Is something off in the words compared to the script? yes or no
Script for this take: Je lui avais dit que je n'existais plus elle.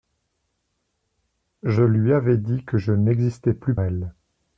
no